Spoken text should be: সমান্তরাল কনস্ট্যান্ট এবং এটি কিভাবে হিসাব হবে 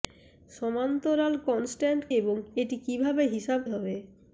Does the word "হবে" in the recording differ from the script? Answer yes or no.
no